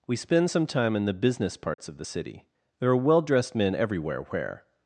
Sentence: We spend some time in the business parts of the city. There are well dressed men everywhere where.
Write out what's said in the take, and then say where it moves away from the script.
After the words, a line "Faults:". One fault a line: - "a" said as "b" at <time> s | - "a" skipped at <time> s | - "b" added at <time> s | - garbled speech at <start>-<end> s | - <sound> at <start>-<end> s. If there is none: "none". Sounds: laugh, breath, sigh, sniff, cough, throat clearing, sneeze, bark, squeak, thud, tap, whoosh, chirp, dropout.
We spend some time in the business parts of the city. There are well dressed men everywhere where.
Faults:
- dropout at 1.7-1.8 s